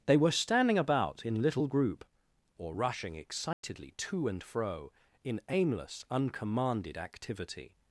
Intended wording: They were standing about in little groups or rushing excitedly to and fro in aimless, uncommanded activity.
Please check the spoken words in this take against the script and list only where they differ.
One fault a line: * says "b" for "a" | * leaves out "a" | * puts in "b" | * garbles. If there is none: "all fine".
* says "group" for "groups"